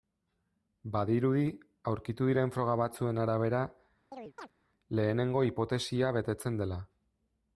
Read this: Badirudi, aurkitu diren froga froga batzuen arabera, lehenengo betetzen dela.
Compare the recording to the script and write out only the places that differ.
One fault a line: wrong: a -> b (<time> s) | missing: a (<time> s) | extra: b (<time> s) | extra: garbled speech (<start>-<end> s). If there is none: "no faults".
missing: froga (2.8 s)
extra: hipotesia (5.5 s)